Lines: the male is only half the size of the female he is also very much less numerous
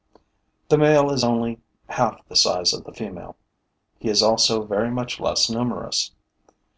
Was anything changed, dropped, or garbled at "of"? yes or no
no